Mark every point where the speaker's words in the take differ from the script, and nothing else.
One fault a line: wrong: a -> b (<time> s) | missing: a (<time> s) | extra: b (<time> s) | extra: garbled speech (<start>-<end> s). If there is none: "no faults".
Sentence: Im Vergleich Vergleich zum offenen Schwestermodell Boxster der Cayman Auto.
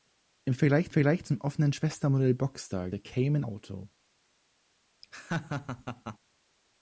no faults